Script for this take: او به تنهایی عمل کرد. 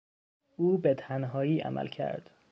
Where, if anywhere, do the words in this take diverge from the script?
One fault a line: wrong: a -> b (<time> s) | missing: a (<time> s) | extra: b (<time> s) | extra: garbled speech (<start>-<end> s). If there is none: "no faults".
no faults